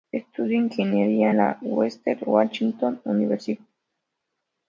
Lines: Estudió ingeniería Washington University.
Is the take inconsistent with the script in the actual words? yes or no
yes